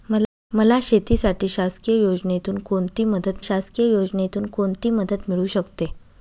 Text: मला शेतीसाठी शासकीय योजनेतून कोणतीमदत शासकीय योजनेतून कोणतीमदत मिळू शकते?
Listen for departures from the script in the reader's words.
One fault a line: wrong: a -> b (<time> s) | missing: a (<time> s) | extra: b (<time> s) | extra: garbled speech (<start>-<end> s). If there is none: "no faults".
no faults